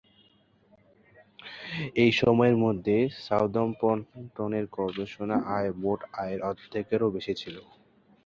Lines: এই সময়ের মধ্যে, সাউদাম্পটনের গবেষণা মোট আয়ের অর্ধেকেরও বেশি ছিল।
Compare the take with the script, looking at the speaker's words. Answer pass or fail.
fail